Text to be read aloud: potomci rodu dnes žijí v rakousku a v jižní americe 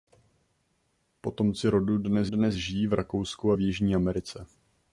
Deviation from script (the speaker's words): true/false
true